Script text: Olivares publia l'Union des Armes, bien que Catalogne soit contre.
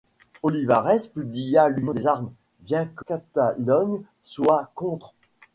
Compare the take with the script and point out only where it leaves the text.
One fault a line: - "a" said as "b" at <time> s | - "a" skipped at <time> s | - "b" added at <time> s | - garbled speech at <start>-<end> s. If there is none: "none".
none